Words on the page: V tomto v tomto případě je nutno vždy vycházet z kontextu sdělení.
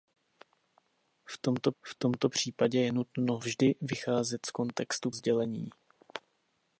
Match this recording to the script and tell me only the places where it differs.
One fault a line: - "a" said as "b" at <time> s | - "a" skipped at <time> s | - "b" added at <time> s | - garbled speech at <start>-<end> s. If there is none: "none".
none